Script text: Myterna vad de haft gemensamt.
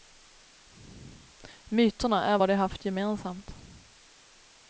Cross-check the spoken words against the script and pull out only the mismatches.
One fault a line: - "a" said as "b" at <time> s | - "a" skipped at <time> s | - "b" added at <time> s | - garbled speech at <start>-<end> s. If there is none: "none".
- "är" added at 2.2 s